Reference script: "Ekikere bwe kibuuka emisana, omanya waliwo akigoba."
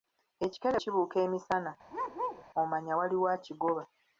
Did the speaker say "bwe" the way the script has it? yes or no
no